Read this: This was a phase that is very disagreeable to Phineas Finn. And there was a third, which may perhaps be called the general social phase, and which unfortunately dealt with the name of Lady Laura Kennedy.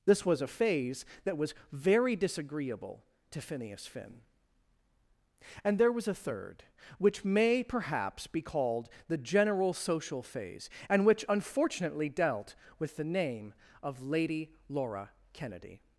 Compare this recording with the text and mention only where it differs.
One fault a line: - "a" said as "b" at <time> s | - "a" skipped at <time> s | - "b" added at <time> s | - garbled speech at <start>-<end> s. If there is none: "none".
- "is" said as "was" at 1.4 s